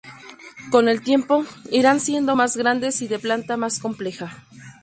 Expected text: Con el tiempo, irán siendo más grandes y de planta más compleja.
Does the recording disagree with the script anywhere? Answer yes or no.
no